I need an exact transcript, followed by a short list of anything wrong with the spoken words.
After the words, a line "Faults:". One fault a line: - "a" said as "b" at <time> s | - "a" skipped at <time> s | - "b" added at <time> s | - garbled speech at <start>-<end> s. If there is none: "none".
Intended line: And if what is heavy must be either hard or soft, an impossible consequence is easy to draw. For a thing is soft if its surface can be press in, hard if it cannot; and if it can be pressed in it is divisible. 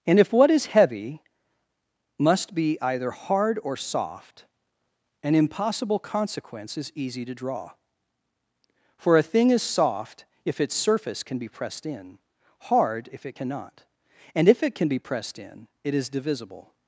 And if what is heavy must be either hard or soft, an impossible consequence is easy to draw. For a thing is soft if its surface can be pressed in, hard if it cannot; and if it can be pressed in it is divisible.
Faults:
- "press" said as "pressed" at 11.5 s